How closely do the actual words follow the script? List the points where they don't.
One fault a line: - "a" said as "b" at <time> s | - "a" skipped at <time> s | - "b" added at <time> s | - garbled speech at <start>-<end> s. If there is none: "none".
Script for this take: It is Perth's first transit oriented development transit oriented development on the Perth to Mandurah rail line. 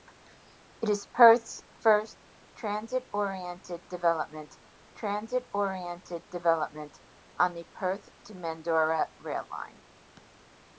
none